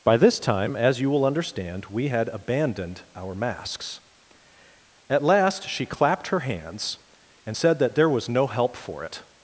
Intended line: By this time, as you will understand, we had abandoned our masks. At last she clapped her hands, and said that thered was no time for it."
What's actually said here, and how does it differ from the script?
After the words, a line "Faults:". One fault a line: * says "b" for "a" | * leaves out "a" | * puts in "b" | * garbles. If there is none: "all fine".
By this time, as you will understand, we had abandoned our masks. At last she clapped her hands, and said that there was no help for it."
Faults:
* says "there" for "thered"
* says "help" for "time"